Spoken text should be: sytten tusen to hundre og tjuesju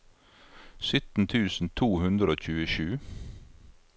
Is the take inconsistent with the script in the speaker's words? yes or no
no